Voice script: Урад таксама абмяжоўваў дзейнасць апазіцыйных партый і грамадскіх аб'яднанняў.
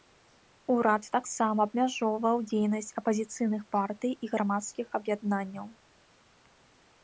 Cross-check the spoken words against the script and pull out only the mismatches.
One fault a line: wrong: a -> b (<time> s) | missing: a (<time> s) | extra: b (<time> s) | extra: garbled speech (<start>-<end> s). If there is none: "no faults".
no faults